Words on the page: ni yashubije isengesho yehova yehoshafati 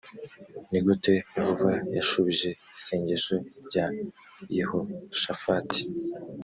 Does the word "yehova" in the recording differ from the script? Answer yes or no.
yes